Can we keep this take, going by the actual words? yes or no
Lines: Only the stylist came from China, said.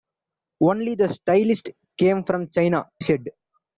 yes